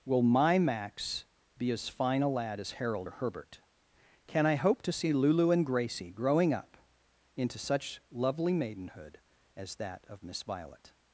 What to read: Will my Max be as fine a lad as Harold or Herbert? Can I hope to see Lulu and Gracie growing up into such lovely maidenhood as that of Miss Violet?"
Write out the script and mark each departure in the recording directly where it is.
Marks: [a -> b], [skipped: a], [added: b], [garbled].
Will my Max be as fine a lad as Harold or Herbert? Can I hope to see Lulu and Gracie growing up into such lovely maidenhood as that of Miss Violet?"